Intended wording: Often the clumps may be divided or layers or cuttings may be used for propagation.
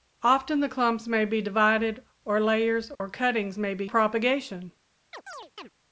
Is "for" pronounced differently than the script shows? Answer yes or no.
yes